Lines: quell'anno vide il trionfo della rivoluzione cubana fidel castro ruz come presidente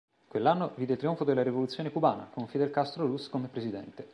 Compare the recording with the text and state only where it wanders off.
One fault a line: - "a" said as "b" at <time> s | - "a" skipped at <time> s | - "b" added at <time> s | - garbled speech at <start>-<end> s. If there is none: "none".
- "con" added at 2.3 s